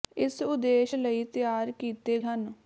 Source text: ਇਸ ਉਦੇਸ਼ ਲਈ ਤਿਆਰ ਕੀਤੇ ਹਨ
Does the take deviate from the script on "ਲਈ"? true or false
false